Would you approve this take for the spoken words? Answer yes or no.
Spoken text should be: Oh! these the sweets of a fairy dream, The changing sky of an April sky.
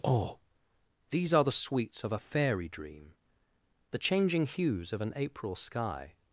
no